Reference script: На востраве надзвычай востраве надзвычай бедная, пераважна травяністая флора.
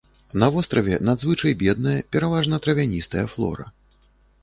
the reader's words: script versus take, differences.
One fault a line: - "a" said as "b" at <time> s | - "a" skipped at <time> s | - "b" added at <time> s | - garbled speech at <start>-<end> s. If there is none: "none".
- "востраве надзвычай" skipped at 1.6 s